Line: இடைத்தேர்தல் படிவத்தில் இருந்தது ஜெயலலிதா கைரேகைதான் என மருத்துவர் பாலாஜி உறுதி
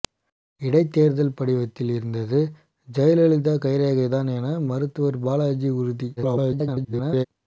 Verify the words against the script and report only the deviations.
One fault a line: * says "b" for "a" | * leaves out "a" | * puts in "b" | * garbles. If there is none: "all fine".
* garbles